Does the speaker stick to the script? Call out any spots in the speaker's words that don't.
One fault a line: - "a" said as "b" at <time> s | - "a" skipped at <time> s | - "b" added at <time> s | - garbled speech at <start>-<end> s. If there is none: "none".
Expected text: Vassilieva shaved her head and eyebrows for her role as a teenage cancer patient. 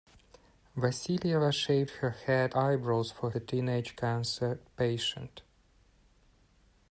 - "and" skipped at 2.5 s
- "her role as" skipped at 3.3 s